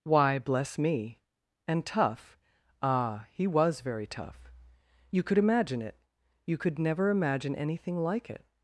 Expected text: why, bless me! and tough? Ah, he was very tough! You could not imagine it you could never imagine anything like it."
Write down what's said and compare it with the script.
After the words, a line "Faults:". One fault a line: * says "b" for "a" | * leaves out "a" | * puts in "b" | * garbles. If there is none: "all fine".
why, bless me! and tough? Ah, he was very tough! You could imagine it you could never imagine anything like it."
Faults:
* leaves out "not"